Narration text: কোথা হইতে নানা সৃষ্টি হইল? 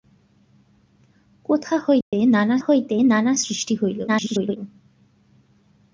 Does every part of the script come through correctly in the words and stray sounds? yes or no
no